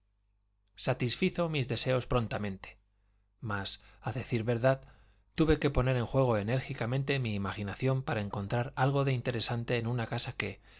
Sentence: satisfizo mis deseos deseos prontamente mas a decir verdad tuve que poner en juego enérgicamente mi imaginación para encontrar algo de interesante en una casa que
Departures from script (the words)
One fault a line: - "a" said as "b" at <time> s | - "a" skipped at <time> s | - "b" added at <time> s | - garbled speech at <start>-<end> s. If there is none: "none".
- "deseos" skipped at 2.1 s